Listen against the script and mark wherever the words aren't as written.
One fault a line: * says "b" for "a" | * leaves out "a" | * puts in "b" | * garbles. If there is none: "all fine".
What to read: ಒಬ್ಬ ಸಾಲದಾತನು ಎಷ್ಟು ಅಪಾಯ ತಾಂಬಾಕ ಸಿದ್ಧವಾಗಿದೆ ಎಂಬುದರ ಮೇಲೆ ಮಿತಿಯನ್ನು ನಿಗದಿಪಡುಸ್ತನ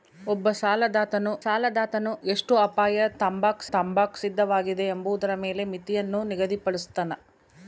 * puts in "ಸಾಲದಾತನು"
* puts in "ತಾಂಬಾಕ"